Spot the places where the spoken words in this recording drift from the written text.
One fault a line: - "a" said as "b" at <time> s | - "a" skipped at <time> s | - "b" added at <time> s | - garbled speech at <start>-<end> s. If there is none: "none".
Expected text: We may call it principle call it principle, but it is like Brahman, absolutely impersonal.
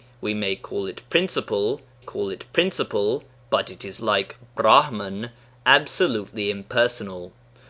none